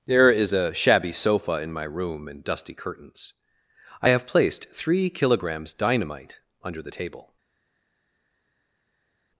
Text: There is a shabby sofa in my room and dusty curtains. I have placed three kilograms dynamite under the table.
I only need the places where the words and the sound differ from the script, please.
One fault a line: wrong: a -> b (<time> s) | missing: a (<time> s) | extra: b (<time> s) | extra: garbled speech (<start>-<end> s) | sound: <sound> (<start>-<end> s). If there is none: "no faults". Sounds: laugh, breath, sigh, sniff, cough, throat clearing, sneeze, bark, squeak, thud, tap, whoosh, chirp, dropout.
no faults